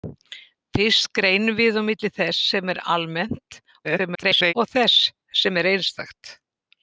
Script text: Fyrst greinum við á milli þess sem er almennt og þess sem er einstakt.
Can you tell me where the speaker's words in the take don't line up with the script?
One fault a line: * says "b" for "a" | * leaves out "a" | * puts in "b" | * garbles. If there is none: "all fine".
* garbles